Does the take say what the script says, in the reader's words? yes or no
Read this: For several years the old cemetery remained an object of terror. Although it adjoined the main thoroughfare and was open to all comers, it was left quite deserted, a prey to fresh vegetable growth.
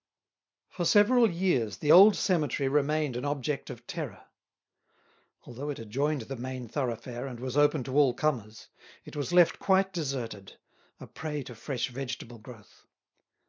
yes